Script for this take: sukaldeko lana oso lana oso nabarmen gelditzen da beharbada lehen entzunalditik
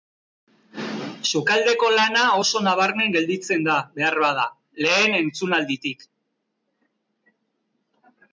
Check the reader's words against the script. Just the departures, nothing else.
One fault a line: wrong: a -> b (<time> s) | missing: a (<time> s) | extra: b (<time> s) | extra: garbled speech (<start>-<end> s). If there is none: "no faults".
missing: lana oso (2.6 s)